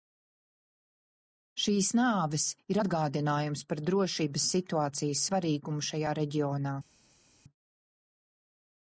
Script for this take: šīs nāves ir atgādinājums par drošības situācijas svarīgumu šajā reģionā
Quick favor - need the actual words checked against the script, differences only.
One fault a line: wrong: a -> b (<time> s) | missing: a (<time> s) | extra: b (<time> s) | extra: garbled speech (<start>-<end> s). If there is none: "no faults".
no faults